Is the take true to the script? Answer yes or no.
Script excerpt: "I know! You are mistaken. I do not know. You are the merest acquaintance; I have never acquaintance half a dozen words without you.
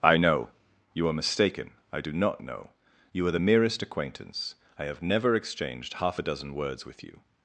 no